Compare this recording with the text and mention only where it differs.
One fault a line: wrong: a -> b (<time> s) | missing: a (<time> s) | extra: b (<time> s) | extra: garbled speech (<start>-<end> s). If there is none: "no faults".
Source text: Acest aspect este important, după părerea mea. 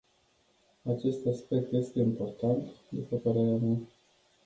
no faults